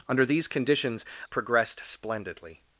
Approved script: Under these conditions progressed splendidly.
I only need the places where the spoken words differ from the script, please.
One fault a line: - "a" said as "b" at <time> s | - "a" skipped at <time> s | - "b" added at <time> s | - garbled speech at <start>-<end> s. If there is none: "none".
none